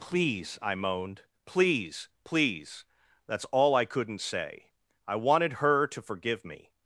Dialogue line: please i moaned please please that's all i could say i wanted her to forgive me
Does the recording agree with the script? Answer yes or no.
no